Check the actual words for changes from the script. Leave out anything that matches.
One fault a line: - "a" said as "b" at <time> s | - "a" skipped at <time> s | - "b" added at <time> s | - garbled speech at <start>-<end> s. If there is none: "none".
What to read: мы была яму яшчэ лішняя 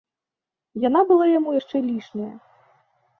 - "мы" said as "яна" at 0.9 s